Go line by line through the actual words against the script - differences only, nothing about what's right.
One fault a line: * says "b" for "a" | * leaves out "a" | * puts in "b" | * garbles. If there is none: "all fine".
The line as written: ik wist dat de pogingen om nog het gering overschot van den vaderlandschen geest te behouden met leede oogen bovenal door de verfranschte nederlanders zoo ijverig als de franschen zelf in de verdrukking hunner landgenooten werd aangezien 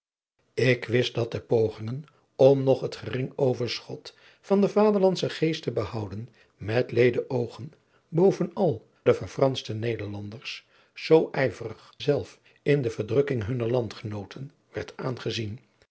* leaves out "door"
* leaves out "als de franschen"